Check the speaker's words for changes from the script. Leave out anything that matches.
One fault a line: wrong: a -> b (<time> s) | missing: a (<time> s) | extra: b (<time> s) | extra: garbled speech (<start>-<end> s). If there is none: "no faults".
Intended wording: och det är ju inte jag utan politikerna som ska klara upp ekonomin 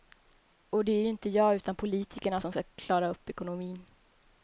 no faults